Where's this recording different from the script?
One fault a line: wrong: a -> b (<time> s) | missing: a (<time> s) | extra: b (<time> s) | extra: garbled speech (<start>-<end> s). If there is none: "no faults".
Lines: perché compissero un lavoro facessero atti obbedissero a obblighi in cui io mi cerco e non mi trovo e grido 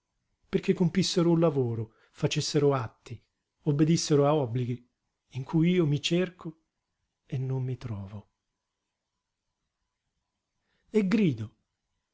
no faults